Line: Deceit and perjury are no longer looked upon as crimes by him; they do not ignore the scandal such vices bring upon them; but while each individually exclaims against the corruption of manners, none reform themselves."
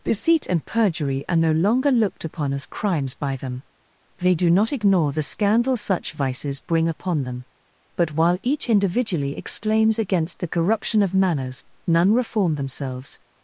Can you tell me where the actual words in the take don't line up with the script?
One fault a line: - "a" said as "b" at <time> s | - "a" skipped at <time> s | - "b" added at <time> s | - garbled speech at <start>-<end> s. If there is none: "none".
- "him" said as "them" at 3.4 s